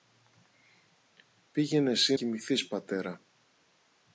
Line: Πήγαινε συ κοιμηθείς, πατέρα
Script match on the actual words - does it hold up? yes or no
yes